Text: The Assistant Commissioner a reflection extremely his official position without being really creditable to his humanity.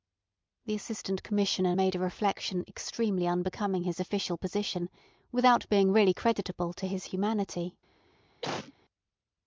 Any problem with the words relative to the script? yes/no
yes